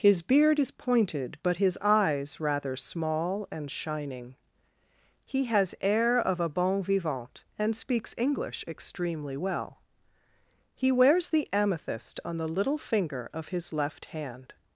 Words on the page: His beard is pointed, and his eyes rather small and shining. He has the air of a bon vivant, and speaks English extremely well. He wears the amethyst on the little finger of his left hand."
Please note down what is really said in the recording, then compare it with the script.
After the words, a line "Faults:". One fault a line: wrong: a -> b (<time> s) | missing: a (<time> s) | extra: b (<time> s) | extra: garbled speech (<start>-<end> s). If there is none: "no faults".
His beard is pointed, but his eyes rather small and shining. He has air of a bon vivant, and speaks English extremely well. He wears the amethyst on the little finger of his left hand."
Faults:
wrong: and -> but (1.4 s)
missing: the (5.8 s)